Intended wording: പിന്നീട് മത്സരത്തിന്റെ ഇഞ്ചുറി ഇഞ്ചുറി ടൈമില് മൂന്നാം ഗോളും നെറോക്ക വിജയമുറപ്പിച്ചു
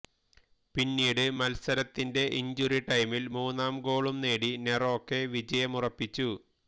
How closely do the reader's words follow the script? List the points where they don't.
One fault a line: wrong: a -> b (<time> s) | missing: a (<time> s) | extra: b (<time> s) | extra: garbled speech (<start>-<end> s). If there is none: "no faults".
missing: ഇഞ്ചുറി (2.8 s)
extra: നേടി (4.2 s)